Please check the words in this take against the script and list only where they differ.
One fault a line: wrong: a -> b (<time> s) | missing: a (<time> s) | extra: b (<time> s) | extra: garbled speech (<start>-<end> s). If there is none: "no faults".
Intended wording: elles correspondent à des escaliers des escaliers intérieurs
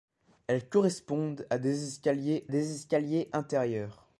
no faults